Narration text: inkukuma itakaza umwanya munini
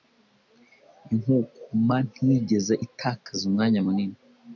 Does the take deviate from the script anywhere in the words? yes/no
yes